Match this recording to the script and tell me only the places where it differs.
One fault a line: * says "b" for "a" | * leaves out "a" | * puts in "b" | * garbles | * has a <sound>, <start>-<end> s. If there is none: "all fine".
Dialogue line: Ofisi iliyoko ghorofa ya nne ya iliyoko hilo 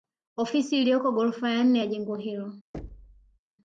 * says "jengo" for "iliyoko"
* has a thud, 2.7-3.4 s